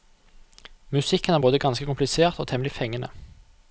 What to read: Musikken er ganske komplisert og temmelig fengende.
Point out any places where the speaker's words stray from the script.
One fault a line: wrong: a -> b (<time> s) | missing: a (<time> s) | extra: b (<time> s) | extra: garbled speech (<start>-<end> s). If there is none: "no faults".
extra: både (1.4 s)